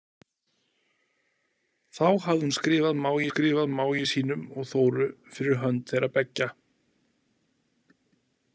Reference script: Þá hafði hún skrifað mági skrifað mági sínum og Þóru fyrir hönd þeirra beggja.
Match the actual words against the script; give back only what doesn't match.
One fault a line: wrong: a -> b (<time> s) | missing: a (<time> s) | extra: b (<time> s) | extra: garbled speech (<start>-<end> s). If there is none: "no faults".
no faults